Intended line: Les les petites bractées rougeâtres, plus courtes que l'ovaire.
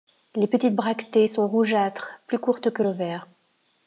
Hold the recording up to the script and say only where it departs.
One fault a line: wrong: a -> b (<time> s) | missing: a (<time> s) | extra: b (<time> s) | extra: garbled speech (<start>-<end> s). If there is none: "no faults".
missing: les (0.5 s)
extra: sont (1.2 s)